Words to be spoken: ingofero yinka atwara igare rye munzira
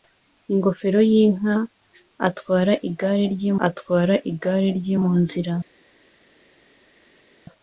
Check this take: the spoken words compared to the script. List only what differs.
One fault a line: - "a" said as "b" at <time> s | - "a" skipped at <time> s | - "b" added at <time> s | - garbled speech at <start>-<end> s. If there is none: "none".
- "atwara igare rye" added at 3.7 s